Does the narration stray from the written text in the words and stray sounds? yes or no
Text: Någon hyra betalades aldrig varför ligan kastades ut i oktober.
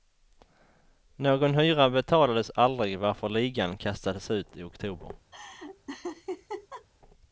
yes